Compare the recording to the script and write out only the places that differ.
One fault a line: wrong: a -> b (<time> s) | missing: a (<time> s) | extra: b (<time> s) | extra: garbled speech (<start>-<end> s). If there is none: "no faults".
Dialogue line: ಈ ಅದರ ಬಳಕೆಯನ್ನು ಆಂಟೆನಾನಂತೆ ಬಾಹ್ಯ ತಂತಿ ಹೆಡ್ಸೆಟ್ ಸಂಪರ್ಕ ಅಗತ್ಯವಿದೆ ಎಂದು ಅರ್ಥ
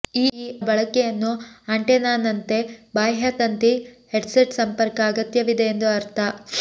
missing: ಅದರ (0.3 s)